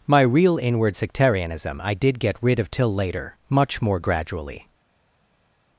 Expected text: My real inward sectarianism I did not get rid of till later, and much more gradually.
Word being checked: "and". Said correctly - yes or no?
no